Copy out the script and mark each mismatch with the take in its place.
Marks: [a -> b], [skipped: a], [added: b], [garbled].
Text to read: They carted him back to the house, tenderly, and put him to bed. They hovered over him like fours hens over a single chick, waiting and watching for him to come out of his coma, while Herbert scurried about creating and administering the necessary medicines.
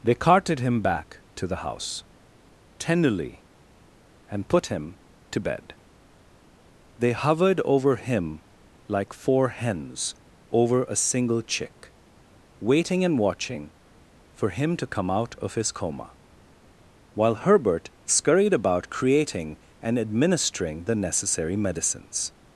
They carted him back to the house, tenderly, and put him to bed. They hovered over him like [fours -> four] hens over a single chick, waiting and watching for him to come out of his coma, while Herbert scurried about creating and administering the necessary medicines.